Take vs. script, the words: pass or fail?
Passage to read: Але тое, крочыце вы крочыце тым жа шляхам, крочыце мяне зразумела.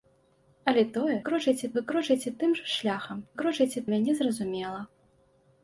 pass